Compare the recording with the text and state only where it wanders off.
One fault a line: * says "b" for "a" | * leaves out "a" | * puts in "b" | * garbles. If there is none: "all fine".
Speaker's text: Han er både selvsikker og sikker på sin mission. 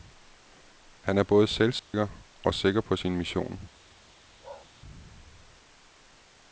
all fine